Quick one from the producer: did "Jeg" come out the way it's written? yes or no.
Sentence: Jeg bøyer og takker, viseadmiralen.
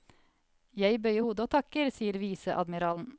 yes